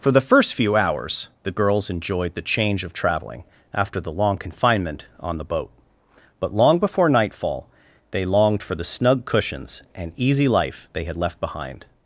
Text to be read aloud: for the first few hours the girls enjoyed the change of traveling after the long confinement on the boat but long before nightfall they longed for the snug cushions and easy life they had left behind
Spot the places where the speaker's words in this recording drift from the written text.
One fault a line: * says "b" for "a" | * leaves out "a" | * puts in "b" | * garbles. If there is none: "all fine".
all fine